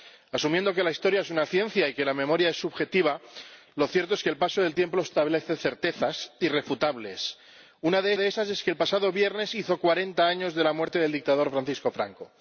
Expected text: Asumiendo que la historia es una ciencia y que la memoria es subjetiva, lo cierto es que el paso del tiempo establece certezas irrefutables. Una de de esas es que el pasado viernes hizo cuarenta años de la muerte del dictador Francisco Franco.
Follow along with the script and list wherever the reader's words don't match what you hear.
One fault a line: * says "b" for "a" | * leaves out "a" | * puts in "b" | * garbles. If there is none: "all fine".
all fine